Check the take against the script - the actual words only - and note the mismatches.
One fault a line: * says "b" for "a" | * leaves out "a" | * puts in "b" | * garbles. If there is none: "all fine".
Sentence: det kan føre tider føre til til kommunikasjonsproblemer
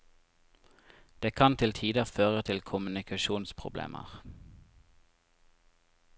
* says "til" for "føre"
* leaves out "til"